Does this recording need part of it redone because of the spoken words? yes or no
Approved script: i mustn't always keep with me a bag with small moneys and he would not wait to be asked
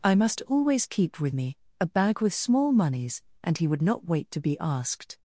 yes